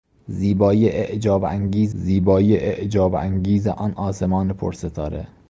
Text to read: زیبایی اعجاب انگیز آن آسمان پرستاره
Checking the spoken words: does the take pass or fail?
fail